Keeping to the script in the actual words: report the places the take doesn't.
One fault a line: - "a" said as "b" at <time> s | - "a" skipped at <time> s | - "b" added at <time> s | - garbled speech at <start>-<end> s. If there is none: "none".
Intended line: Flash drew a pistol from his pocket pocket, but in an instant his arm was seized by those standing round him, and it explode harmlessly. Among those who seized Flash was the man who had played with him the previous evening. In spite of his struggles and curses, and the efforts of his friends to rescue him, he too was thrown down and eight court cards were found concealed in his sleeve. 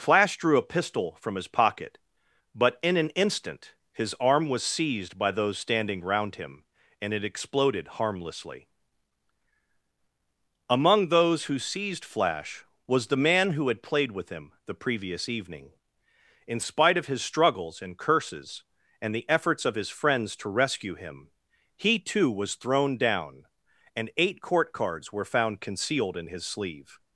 - "pocket" skipped at 2.0 s
- "explode" said as "exploded" at 7.2 s